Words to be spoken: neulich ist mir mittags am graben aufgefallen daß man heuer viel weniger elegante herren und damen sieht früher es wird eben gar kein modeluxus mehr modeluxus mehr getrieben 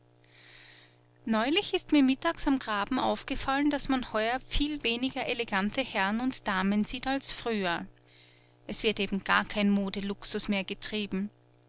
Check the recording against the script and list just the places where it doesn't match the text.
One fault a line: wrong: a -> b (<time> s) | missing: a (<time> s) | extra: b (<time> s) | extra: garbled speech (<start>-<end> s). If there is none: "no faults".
extra: als (7.1 s)
missing: modeluxus mehr (10.6 s)